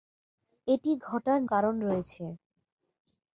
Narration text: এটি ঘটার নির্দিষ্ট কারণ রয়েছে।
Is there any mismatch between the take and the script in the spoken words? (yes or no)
yes